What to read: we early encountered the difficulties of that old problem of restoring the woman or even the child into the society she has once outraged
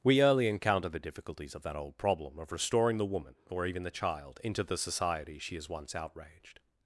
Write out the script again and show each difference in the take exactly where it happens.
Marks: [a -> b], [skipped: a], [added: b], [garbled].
we early [encountered -> encounter] the difficulties of that old problem of restoring the woman or even the child into the society she has once outraged